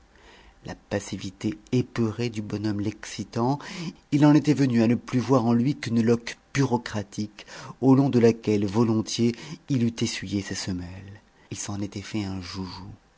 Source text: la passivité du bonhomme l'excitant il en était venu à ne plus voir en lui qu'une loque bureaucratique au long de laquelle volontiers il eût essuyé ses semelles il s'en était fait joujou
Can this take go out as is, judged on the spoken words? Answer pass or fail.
fail